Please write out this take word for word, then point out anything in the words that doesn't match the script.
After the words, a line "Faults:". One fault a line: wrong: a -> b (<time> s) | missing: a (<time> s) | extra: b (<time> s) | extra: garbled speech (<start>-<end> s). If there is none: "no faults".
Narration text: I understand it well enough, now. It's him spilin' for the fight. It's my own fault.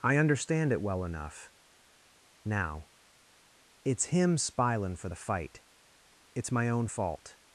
I understand it well enough, now. It's him spilin' for the fight. It's my own fault.
Faults:
no faults